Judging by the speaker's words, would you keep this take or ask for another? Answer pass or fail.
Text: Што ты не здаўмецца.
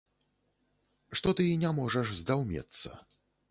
fail